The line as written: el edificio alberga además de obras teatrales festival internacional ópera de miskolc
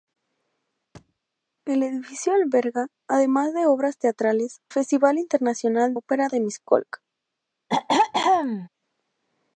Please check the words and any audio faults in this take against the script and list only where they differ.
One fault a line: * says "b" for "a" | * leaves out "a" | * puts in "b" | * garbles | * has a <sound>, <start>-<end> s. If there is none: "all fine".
* has a thud, 0.9-1.2 s
* has a throat clearing, 7.7-8.7 s